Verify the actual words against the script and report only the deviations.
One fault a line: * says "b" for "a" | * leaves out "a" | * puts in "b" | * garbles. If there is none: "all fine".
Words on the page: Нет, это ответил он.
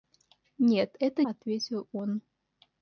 all fine